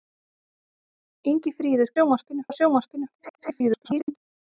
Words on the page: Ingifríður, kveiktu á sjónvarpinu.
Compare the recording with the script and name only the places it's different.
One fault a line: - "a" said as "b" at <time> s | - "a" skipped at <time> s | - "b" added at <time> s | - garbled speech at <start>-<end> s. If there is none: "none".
- "kveiktu" said as "sjónvarpinu" at 2.0 s
- garbled speech at 3.1-4.2 s